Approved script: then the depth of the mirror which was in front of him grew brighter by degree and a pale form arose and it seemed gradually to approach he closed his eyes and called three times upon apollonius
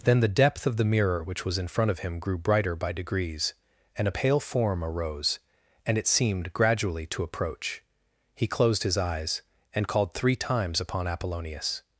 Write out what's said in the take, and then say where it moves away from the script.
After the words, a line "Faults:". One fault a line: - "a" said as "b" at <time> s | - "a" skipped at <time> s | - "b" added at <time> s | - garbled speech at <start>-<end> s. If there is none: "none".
then the depth of the mirror which was in front of him grew brighter by degrees and a pale form arose and it seemed gradually to approach he closed his eyes and called three times upon apollonius
Faults:
- "degree" said as "degrees" at 2.9 s